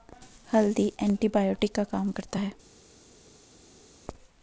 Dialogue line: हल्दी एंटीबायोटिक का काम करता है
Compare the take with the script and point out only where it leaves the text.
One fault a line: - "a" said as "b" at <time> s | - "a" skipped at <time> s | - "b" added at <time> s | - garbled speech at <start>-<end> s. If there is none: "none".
none